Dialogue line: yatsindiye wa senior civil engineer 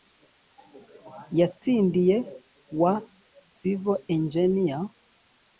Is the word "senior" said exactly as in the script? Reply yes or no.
no